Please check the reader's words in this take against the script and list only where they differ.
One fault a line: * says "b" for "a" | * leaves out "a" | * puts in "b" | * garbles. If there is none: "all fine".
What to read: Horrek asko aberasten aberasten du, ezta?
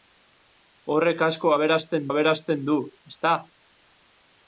all fine